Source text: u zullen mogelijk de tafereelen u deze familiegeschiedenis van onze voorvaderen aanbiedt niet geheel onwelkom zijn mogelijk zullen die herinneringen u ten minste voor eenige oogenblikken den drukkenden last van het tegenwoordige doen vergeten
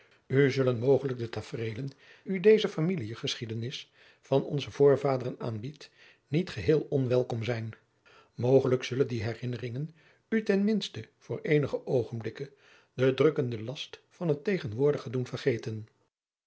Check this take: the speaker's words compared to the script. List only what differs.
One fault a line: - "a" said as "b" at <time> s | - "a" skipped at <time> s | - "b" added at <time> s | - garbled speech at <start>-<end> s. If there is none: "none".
none